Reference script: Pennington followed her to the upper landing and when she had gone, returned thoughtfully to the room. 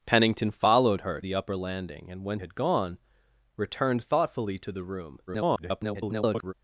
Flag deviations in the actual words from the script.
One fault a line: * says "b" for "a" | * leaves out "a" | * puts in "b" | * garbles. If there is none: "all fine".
* leaves out "to"
* leaves out "she"
* garbles